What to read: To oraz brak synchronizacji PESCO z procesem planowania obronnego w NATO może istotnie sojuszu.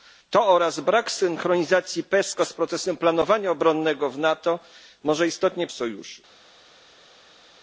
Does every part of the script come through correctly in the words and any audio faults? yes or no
yes